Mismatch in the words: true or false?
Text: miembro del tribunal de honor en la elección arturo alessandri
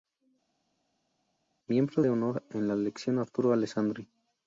true